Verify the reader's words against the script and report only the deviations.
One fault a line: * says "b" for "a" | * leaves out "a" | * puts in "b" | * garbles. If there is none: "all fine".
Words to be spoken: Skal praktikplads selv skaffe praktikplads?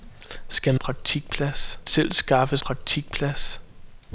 all fine